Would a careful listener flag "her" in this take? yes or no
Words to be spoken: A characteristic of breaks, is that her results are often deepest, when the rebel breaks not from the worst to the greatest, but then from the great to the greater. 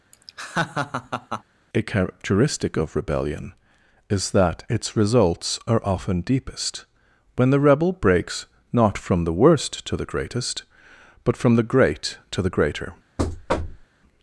yes